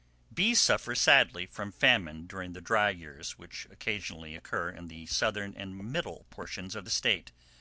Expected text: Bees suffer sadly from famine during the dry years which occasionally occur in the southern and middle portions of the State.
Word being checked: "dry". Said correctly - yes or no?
yes